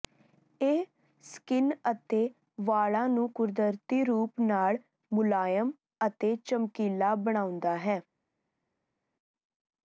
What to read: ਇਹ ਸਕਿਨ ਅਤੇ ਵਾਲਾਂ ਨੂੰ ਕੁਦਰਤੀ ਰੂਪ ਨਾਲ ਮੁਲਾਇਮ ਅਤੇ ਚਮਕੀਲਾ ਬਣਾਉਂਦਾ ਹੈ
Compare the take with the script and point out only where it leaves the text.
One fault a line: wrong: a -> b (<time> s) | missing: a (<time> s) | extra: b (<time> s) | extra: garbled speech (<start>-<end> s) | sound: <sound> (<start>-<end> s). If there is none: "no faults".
no faults